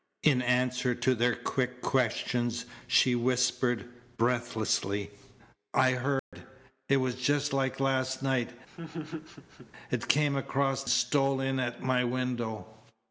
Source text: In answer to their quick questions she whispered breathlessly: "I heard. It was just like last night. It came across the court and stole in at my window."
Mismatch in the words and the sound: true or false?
true